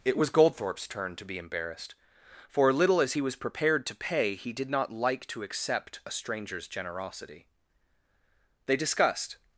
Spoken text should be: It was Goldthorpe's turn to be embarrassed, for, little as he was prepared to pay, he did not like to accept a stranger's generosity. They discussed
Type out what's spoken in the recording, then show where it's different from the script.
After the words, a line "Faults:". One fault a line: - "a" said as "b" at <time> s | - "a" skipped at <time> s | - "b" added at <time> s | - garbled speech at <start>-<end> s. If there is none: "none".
It was Goldthorpe's turn to be embarrassed, for, little as he was prepared to pay, he did not like to accept a stranger's generosity. They discussed
Faults:
none